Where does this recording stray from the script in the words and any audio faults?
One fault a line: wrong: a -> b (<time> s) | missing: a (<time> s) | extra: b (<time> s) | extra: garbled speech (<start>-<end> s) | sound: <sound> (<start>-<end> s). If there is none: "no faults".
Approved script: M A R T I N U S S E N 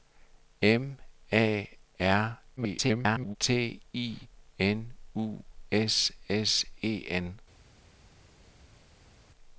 extra: garbled speech (2.6-3.4 s)